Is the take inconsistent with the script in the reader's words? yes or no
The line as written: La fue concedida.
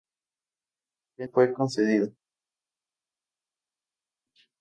no